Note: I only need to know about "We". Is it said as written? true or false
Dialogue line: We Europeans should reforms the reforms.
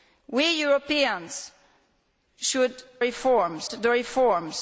true